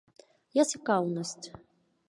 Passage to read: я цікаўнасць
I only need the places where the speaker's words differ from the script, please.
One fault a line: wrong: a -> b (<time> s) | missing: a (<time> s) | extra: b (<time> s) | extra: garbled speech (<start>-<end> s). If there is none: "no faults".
no faults